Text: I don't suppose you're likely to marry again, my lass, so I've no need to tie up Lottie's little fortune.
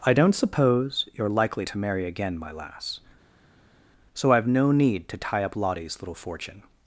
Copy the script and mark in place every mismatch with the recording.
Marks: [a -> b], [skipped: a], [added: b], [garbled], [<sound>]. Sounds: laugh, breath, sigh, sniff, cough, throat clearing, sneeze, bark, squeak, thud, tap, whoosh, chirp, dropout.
I don't suppose you're likely to marry again, my lass, so I've no need to tie up Lottie's little fortune.